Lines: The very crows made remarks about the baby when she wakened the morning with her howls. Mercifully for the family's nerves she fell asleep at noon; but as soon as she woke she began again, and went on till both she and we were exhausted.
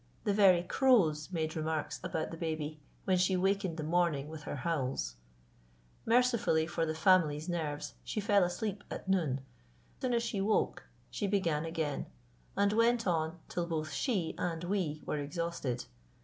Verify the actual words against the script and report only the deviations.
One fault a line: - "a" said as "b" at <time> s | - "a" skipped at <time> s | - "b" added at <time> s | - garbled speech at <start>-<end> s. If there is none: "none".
- "but as" skipped at 9.4 s